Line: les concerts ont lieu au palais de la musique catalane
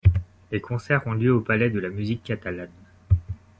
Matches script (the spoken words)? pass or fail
pass